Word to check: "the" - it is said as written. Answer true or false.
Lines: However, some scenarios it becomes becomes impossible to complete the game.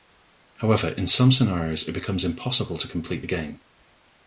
true